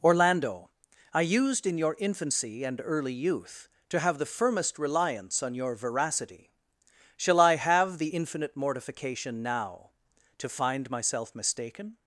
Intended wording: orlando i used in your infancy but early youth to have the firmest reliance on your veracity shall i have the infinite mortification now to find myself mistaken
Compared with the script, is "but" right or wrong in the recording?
wrong